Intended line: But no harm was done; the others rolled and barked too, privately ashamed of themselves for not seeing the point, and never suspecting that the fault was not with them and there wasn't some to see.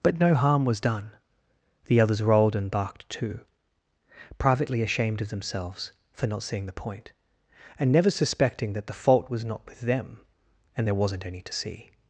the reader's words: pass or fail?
fail